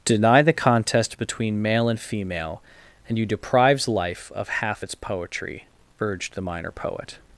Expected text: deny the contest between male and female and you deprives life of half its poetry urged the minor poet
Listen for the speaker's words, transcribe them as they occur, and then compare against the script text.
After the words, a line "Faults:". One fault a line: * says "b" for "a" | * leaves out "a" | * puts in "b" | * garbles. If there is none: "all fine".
deny the contest between male and female and you deprives life of half its poetry urged the minor poet
Faults:
all fine